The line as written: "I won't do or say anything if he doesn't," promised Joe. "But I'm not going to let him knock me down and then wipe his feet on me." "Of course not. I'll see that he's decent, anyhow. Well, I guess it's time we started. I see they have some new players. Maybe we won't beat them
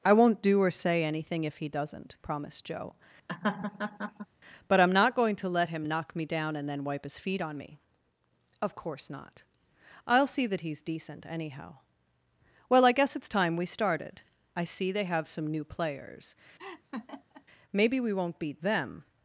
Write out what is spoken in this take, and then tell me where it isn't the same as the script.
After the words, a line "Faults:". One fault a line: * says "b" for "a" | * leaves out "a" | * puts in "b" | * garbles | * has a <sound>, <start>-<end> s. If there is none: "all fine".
"I won't do or say anything if he doesn't," promised Joe. "But I'm not going to let him knock me down and then wipe his feet on me." "Of course not. I'll see that he's decent, anyhow. Well, I guess it's time we started. I see they have some new players. Maybe we won't beat them
Faults:
* has a laugh, 3.3-4.3 s
* has a laugh, 16.6-17.4 s